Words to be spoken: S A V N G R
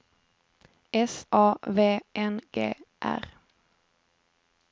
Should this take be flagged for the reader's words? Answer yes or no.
no